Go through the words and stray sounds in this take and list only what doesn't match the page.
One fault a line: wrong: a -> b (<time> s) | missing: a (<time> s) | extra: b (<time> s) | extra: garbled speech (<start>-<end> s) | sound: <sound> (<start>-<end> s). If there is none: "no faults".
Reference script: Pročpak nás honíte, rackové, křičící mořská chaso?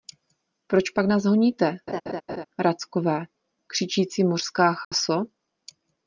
sound: laugh (1.9-2.5 s)
sound: dropout (4.8-4.9 s)